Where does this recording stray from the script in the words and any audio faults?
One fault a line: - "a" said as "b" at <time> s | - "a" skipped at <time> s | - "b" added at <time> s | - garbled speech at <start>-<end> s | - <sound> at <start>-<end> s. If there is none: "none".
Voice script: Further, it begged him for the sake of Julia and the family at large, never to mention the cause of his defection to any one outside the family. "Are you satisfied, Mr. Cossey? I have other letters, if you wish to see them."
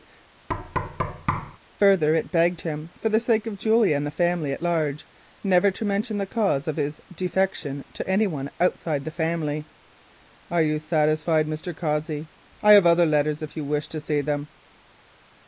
- thud at 0.5-1.6 s